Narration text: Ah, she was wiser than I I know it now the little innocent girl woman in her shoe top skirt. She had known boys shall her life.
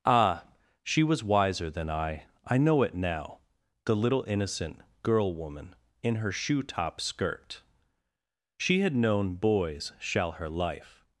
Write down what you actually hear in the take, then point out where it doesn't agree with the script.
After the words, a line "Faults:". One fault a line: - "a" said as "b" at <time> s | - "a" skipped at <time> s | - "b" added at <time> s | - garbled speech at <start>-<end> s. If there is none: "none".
Ah, she was wiser than I I know it now the little innocent girl woman in her shoe top skirt. She had known boys shall her life.
Faults:
none